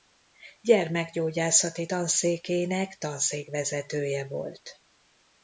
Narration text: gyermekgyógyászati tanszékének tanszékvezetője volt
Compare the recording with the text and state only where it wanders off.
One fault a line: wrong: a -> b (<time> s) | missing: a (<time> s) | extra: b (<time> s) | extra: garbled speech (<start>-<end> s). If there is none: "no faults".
no faults